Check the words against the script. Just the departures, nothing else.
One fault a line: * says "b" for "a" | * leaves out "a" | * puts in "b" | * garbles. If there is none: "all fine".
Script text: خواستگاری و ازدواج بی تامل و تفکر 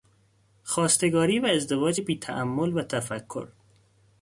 all fine